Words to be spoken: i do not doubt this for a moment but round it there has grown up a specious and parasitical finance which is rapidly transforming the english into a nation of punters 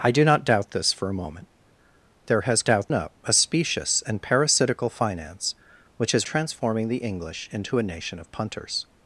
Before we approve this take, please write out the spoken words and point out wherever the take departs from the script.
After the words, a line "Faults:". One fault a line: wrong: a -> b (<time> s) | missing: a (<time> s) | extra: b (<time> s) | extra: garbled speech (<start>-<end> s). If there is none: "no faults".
i do not doubt this for a moment there has doubt up a specious and parasitical finance which is transforming the english into a nation of punters
Faults:
missing: but round it (1.5 s)
wrong: grown -> doubt (2.6 s)
missing: rapidly (6.2 s)